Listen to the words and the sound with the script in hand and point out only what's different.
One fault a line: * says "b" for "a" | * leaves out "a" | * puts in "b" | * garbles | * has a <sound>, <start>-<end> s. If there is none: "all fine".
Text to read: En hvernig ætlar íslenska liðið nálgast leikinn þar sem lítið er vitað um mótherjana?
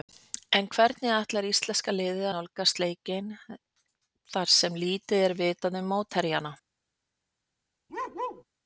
* has a bark, 7.9-8.4 s